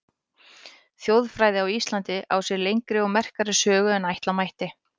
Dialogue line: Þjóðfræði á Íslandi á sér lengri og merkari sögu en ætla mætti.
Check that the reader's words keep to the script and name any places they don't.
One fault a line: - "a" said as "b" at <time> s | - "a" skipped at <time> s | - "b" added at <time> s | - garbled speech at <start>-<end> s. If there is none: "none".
none